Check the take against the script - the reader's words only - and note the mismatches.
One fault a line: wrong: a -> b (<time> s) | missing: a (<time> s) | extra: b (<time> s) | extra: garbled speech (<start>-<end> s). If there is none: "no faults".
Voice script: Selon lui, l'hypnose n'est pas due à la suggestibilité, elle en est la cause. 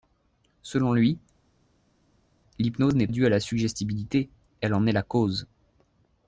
missing: pas (3.1 s)